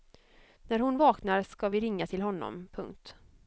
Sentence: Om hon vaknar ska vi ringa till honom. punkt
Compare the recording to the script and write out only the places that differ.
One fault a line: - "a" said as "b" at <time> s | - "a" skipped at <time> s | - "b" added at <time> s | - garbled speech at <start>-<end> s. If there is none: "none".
- "Om" said as "När" at 0.6 s